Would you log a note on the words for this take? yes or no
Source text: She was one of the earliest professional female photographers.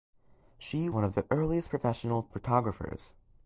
yes